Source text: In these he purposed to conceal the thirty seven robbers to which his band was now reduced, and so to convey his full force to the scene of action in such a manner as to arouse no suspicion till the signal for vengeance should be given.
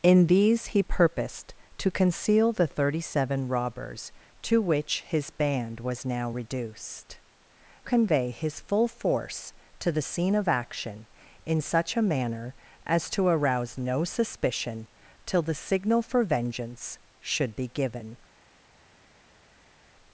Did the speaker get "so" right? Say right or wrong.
wrong